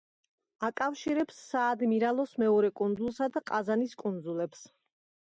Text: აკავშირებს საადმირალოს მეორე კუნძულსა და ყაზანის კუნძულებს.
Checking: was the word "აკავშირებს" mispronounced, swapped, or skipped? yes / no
no